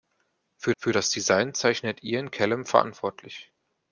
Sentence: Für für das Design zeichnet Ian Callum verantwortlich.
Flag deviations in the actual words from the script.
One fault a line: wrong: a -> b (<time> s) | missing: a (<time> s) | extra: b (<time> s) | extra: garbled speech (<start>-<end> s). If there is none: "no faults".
no faults